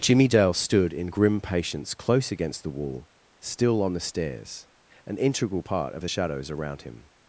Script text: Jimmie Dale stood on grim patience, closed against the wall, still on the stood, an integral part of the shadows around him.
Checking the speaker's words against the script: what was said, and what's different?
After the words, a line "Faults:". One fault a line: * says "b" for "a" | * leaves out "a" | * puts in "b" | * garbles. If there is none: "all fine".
Jimmie Dale stood in grim patience, close against the wall, still on the stairs, an integral part of the shadows around him.
Faults:
* says "in" for "on"
* says "close" for "closed"
* says "stairs" for "stood"